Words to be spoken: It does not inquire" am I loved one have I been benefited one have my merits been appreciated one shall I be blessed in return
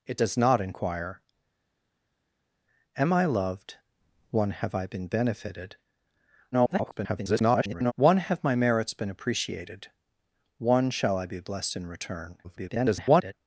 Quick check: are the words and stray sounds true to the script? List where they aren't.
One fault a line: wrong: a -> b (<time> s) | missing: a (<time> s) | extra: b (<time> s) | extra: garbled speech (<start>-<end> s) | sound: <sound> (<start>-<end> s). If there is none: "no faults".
extra: garbled speech (6.5-7.9 s)
extra: garbled speech (12.4-13.3 s)